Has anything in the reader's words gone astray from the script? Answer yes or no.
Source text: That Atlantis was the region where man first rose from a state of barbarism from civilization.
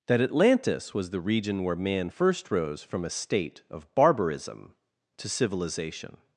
yes